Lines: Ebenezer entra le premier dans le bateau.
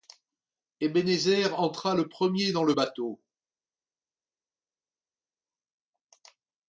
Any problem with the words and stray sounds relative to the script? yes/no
no